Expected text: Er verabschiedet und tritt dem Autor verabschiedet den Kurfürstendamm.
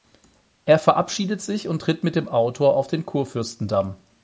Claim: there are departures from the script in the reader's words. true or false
true